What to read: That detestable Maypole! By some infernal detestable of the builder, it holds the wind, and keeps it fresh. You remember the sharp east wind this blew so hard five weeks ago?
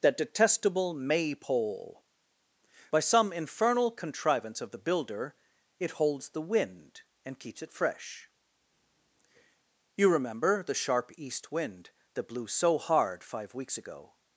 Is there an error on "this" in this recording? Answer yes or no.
yes